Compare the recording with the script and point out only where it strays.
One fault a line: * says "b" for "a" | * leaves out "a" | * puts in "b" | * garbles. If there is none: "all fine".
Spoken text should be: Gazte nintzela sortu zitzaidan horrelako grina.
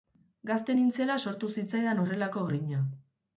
all fine